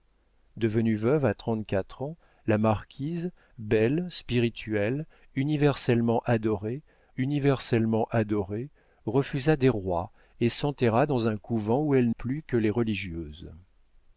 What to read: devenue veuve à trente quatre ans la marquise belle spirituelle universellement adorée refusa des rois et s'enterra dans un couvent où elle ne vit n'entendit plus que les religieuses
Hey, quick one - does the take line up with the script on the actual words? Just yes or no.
no